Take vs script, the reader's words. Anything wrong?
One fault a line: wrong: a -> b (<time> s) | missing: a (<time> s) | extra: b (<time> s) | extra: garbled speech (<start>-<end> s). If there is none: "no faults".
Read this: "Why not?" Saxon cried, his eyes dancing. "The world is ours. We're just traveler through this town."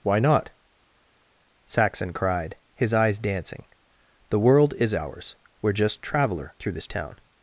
no faults